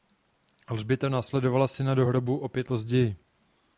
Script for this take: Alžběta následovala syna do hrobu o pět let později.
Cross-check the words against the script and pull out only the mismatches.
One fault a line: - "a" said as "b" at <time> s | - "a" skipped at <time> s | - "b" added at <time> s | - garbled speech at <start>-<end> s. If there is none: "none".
- "let" skipped at 2.7 s